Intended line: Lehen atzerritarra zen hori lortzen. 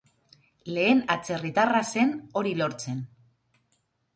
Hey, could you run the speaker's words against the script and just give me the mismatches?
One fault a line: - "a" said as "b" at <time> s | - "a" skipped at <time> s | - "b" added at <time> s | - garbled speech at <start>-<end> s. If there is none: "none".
none